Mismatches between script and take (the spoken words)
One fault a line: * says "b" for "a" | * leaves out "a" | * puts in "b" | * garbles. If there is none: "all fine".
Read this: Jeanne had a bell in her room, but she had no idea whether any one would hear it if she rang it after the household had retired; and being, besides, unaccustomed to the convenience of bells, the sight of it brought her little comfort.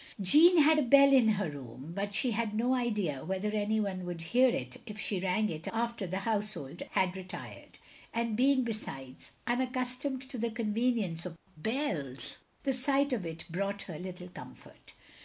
all fine